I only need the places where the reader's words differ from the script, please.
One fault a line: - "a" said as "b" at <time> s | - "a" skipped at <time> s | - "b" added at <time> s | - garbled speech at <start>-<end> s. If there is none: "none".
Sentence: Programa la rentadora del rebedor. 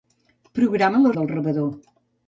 - "rentadora" skipped at 1.1 s